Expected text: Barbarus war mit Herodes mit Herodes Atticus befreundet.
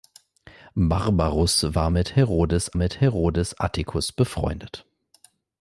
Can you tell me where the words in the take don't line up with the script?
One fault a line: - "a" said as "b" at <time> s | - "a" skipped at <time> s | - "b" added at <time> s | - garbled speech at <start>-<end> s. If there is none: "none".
none